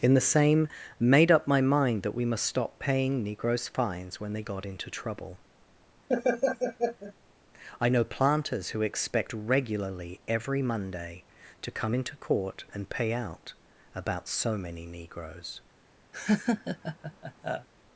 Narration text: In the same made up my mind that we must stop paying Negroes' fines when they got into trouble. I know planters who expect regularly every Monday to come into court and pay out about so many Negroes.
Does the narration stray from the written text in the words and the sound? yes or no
yes